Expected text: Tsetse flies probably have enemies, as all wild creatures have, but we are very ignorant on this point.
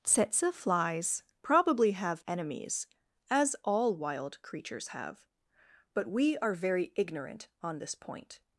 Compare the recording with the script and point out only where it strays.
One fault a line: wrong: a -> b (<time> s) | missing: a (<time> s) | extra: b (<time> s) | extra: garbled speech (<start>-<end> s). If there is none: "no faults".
no faults